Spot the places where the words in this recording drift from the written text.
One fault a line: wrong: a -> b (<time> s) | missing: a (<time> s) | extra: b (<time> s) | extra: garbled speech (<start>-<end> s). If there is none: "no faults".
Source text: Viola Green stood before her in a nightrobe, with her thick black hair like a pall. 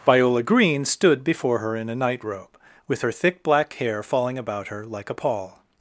extra: falling about her (4.0 s)